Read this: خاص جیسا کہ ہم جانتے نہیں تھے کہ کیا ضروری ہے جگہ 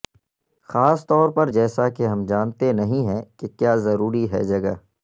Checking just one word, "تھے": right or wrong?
wrong